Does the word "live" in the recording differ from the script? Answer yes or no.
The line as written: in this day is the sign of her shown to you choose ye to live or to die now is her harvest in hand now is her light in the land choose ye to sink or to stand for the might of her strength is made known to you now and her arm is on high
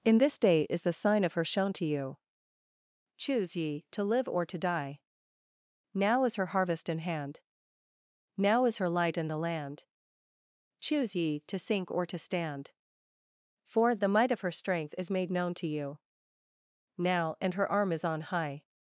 no